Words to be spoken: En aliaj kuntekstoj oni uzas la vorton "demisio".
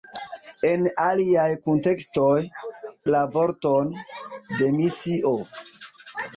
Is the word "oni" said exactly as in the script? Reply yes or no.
no